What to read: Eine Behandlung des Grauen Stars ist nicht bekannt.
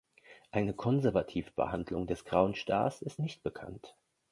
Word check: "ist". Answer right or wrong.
right